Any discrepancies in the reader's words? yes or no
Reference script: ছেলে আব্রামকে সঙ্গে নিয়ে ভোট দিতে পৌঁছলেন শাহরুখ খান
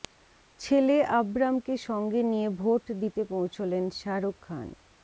no